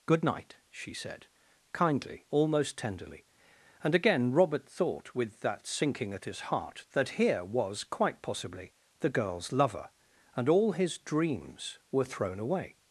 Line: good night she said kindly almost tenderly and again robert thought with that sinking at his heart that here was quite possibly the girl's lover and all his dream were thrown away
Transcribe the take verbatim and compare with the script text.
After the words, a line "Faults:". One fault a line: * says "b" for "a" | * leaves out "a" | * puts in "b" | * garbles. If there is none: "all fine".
good night she said kindly almost tenderly and again robert thought with that sinking at his heart that here was quite possibly the girl's lover and all his dreams were thrown away
Faults:
* says "dreams" for "dream"